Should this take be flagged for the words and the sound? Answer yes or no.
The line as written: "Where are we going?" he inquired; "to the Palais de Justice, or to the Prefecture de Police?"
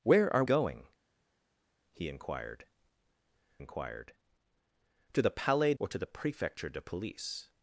yes